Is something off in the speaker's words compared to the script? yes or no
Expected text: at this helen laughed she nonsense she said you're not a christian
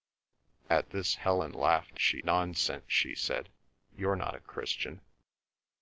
no